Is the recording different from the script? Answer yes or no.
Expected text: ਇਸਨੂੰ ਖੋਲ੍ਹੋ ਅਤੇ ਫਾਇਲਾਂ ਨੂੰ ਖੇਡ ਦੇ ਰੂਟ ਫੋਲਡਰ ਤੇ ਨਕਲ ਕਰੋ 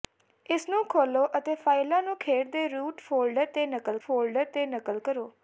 yes